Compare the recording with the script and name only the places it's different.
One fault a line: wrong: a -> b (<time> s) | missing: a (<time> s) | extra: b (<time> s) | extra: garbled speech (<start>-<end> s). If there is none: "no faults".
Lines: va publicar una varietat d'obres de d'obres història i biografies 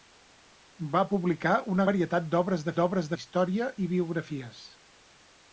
no faults